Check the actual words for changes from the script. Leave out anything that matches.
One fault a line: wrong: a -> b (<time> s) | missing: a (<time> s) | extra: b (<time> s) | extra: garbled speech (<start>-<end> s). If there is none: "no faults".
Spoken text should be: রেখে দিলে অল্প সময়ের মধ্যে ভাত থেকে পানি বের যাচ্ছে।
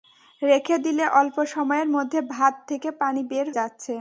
no faults